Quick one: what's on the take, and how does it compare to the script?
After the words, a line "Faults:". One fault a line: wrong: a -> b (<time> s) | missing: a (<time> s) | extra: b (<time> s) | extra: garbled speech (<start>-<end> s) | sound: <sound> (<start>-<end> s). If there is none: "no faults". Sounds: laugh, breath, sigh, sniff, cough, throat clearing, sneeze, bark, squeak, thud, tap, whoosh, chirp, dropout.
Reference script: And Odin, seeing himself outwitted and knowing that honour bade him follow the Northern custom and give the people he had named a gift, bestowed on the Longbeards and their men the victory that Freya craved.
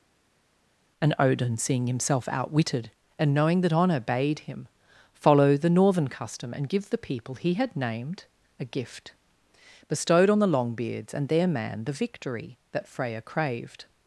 And Odin, seeing himself outwitted and knowing that honour bade him follow the Northern custom and give the people he had named a gift, bestowed on the Longbeards and their man the victory that Freya craved.
Faults:
wrong: men -> man (11.5 s)